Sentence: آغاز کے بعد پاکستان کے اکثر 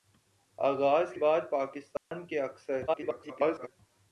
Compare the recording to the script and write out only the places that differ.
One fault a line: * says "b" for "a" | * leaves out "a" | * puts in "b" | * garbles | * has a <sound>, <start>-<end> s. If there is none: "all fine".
* leaves out "کے"
* has a dropout, 2.0-2.1 s
* garbles